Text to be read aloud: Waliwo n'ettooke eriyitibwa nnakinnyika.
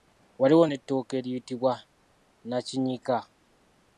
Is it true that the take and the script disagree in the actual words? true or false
false